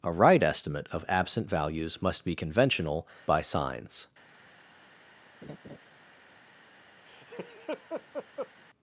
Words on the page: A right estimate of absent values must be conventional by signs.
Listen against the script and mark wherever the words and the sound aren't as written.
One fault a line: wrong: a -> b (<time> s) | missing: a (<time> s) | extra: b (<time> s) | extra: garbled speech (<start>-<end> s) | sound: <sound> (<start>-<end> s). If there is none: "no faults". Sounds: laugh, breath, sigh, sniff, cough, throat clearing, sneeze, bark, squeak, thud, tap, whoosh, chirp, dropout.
sound: laugh (5.4-5.8 s)
sound: laugh (7.1-8.5 s)